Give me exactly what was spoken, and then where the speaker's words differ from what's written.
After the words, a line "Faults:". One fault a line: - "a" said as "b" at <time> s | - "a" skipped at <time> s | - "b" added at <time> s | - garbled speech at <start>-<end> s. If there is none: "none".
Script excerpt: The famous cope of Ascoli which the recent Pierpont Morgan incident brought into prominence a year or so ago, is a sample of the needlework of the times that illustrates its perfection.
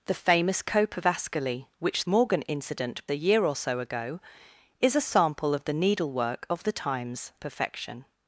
The famous cope of Ascoli which Morgan incident a year or so ago, is a sample of the needlework of the times perfection.
Faults:
- "the recent Pierpont" skipped at 2.0 s
- "brought into prominence" skipped at 3.1 s
- "that illustrates its" skipped at 7.3 s